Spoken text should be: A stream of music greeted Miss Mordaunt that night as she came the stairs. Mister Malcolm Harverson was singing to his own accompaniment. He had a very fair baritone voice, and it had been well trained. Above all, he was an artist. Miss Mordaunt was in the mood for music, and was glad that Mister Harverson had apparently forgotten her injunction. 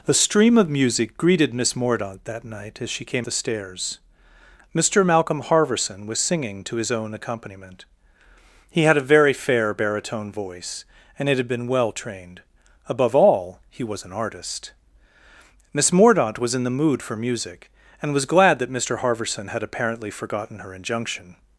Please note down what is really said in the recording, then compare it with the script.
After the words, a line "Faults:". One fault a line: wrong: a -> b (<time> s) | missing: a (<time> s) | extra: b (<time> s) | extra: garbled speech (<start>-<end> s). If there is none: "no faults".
A stream of music greeted Miss Mordaunt that night as she came the stairs. Mister Malcolm Harverson was singing to his own accompaniment. He had a very fair baritone voice, and it had been well trained. Above all, he was an artist. Miss Mordaunt was in the mood for music, and was glad that Mister Harverson had apparently forgotten her injunction.
Faults:
no faults